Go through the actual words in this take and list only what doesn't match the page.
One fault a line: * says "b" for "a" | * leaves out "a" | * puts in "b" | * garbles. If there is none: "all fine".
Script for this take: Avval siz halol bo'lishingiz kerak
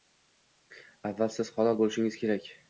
all fine